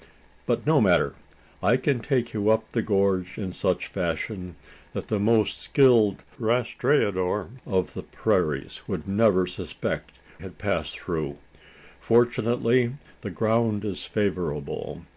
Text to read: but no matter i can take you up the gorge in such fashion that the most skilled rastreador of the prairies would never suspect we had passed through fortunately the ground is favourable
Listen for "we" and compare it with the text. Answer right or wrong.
wrong